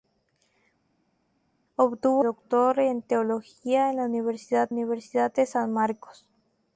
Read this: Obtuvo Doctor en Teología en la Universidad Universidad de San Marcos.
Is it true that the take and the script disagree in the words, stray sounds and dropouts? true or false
false